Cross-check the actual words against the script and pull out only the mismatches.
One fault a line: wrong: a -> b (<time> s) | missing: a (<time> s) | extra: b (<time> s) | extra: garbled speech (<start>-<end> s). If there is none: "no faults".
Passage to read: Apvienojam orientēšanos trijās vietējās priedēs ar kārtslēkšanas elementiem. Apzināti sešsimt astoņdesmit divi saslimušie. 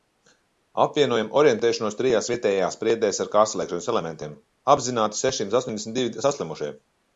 no faults